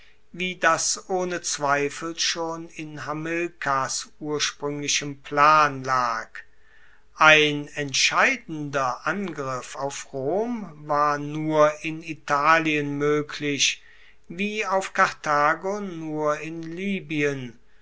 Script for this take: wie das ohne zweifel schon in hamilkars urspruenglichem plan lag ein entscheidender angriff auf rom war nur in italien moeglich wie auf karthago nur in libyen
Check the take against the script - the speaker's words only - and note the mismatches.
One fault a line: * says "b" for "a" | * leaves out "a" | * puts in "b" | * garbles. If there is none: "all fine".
all fine